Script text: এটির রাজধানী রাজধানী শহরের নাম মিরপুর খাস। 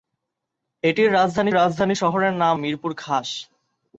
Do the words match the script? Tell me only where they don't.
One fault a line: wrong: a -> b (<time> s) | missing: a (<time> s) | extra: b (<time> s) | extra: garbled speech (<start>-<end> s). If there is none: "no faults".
no faults